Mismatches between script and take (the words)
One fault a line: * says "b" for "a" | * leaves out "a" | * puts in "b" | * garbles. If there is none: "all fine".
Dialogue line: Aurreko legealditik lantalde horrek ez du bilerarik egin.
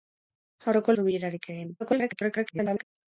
* leaves out "legealditik lantalde horrek"
* garbles